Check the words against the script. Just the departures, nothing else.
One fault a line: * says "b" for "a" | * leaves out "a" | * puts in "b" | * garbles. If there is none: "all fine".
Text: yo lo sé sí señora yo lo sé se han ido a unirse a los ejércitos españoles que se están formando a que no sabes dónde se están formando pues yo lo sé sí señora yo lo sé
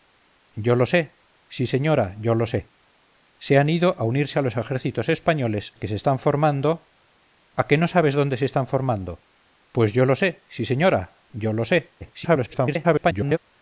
* garbles